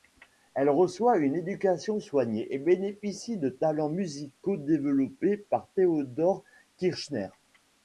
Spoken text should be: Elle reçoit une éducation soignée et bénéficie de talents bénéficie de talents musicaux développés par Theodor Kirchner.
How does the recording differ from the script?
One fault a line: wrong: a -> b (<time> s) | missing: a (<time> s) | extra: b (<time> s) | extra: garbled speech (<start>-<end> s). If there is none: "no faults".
missing: bénéficie de talents (3.9 s)